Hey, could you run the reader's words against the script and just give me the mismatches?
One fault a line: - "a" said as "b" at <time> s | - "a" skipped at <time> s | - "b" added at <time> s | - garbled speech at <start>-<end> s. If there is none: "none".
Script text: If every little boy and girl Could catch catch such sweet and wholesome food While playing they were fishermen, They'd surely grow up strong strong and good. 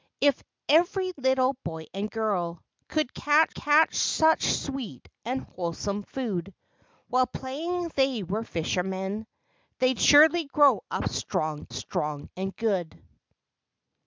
none